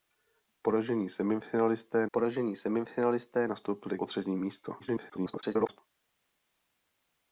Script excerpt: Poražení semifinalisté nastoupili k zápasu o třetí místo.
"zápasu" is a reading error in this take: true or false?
true